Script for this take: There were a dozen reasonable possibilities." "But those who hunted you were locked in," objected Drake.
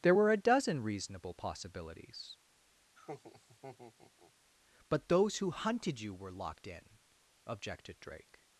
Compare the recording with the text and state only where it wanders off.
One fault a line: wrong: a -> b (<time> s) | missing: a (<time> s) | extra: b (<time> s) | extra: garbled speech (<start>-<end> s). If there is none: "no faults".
no faults